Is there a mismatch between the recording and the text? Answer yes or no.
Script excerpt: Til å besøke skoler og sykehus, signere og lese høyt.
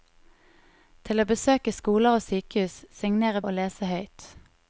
no